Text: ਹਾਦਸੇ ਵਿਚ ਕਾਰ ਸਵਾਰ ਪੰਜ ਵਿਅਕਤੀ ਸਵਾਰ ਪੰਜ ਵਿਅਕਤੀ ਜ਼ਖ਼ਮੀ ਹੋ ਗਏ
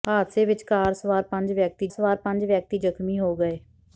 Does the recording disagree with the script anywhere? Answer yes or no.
no